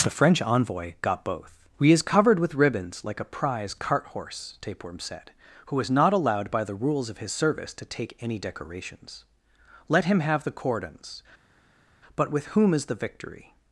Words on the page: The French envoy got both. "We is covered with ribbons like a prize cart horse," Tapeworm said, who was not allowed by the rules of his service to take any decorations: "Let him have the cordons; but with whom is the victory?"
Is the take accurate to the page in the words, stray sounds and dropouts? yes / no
yes